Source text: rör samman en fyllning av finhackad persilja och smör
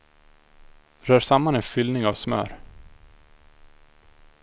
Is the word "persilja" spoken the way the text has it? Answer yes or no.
no